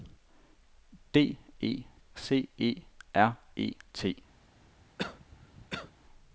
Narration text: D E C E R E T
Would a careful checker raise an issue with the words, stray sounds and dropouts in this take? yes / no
yes